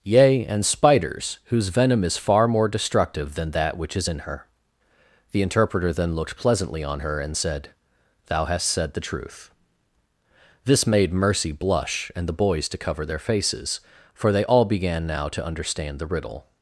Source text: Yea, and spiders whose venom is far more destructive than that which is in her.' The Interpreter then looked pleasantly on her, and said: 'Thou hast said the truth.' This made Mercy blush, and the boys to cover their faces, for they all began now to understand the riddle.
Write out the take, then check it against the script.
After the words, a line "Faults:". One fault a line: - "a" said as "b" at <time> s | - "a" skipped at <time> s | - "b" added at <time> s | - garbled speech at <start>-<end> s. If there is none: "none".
Yea, and spiders whose venom is far more destructive than that which is in her.' The Interpreter then looked pleasantly on her, and said: 'Thou hast said the truth.' This made Mercy blush, and the boys to cover their faces, for they all began now to understand the riddle.
Faults:
none